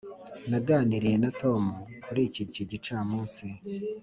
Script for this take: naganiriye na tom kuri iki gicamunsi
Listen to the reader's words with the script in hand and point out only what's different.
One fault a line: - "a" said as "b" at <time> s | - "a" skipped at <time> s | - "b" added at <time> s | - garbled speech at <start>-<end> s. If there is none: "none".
- "iki" added at 2.5 s